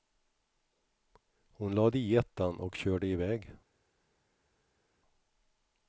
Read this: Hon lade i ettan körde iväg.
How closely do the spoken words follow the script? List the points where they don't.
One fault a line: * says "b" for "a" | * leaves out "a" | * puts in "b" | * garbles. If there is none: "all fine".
* puts in "och"